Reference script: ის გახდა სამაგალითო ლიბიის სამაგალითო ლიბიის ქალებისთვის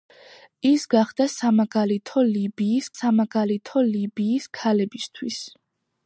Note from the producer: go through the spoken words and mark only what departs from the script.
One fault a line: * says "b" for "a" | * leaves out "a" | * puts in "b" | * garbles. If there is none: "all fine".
all fine